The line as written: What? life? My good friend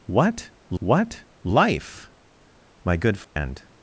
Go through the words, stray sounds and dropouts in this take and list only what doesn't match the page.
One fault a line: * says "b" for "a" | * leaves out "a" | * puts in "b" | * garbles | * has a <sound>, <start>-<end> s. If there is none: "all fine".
* puts in "what"
* has a dropout, 3.2-3.4 s